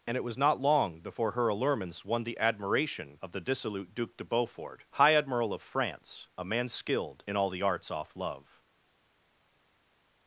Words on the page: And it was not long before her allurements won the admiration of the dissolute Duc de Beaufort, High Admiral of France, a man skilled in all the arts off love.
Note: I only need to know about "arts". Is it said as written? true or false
true